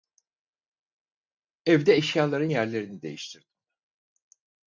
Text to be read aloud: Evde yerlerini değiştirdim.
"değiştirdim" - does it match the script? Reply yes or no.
yes